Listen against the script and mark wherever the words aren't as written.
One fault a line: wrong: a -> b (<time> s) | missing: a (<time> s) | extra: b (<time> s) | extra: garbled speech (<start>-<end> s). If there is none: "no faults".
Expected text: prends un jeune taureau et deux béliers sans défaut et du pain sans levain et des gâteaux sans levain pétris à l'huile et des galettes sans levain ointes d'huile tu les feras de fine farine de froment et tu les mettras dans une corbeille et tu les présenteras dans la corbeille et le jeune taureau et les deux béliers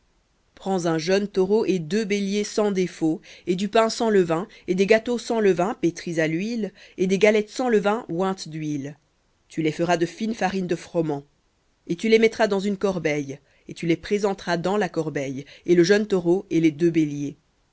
no faults